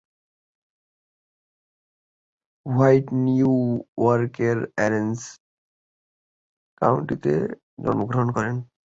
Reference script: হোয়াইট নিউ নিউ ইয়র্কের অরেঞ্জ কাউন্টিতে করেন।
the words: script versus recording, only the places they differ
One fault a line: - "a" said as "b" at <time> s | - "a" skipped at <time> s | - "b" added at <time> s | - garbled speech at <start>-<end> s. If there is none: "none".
- "নিউ" skipped at 3.5 s
- "জন্মগ্রহণ" added at 7.8 s